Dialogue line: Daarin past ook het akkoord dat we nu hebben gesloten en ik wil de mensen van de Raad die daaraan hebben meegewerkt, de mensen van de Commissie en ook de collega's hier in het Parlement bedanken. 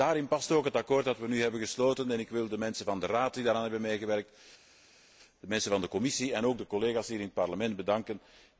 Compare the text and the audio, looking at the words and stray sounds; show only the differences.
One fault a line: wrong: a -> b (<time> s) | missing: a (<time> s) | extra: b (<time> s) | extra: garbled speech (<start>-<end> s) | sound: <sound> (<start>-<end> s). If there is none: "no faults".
no faults